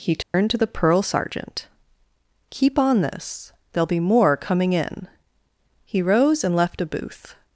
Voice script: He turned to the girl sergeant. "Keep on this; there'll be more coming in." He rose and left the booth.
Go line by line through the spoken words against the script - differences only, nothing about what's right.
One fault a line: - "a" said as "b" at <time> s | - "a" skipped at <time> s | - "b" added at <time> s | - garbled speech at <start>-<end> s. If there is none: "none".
- "girl" said as "pearl" at 0.7 s
- "the" said as "a" at 6.8 s